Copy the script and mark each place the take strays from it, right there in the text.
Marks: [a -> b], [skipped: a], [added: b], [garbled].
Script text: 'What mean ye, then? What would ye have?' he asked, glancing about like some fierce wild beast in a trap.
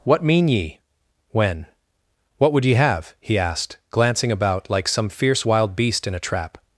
'What mean ye, [then? -> when] What would ye have?' he asked, glancing about like some fierce wild beast in a trap.